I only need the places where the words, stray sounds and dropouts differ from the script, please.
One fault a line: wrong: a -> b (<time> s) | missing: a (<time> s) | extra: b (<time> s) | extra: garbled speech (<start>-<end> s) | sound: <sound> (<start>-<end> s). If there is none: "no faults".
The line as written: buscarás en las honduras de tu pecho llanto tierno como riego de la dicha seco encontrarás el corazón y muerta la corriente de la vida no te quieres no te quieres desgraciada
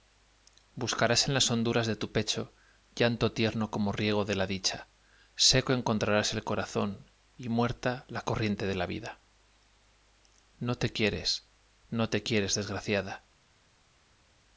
no faults